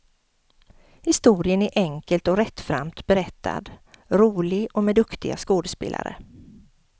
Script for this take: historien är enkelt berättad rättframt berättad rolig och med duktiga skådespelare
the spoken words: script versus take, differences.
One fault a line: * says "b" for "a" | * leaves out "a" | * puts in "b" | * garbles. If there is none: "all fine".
* says "och" for "berättad"